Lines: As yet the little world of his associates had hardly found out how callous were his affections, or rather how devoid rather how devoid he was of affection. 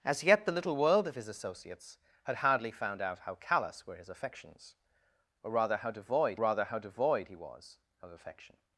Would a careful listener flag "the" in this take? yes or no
no